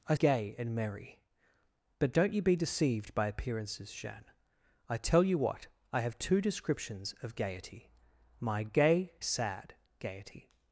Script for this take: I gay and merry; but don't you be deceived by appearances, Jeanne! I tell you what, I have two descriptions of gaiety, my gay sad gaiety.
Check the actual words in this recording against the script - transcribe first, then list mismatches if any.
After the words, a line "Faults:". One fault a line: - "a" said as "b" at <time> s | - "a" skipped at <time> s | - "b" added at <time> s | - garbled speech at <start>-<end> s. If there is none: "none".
I gay and merry; but don't you be deceived by appearances, Jeanne! I tell you what, I have two descriptions of gaiety, my gay sad gaiety.
Faults:
none